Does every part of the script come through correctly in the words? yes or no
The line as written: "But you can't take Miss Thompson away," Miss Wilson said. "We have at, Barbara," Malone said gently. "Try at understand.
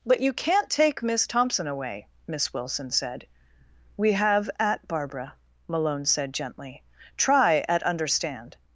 yes